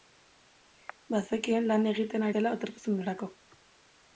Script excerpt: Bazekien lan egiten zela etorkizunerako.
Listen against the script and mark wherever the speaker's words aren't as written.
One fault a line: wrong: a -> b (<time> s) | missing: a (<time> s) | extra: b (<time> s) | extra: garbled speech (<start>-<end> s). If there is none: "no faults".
no faults